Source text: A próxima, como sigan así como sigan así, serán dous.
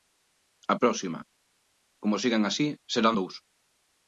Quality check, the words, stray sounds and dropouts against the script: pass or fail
fail